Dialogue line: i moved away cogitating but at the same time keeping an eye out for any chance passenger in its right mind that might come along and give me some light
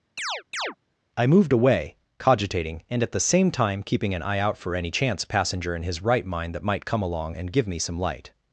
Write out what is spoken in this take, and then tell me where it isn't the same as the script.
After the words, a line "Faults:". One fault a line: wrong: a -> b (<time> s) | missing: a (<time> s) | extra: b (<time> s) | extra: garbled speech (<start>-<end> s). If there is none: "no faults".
i moved away cogitating and at the same time keeping an eye out for any chance passenger in his right mind that might come along and give me some light
Faults:
wrong: but -> and (2.9 s)
wrong: its -> his (5.8 s)